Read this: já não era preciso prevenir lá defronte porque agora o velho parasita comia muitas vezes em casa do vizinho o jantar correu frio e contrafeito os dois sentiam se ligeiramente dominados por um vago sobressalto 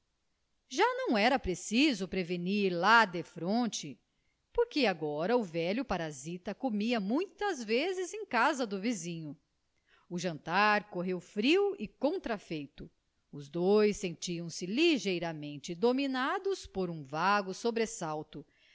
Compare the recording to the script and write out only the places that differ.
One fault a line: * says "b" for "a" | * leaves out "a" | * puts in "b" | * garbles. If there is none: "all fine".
all fine